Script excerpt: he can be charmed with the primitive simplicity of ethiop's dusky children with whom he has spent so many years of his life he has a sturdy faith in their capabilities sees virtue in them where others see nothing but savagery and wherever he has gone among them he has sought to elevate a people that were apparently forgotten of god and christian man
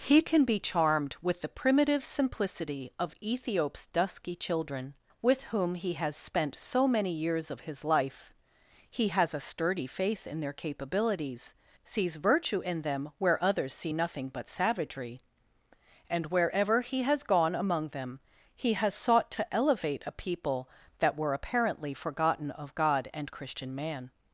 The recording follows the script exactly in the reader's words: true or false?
true